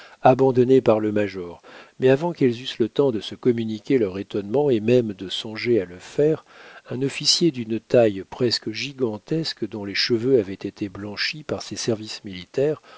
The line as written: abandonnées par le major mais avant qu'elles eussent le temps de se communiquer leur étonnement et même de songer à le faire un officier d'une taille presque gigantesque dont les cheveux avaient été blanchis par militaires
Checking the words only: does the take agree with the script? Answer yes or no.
no